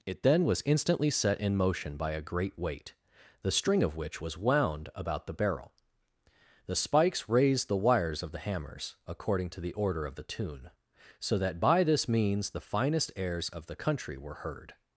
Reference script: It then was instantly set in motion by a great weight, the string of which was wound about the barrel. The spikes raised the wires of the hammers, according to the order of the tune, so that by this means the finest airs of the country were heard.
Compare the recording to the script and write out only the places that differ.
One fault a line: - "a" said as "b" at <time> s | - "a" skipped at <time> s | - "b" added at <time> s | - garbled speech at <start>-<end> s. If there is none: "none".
none